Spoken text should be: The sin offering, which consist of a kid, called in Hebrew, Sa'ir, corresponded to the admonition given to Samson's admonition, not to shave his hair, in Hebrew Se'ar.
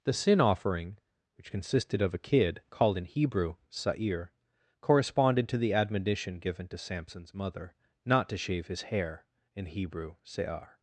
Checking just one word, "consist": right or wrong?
wrong